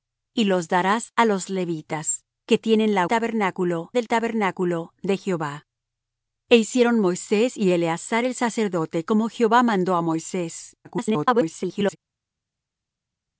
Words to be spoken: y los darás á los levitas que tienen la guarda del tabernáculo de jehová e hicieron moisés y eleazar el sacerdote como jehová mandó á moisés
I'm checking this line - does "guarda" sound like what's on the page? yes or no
no